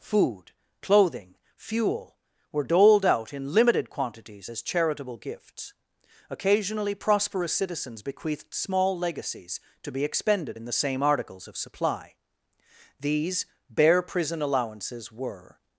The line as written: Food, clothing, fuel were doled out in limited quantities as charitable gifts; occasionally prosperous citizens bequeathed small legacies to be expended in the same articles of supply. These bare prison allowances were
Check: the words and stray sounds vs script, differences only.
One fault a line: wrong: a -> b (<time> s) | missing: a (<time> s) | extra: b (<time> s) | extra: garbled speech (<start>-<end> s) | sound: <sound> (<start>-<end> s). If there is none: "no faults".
no faults